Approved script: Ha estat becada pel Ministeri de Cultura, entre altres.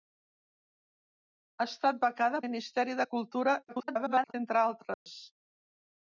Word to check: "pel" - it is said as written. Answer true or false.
false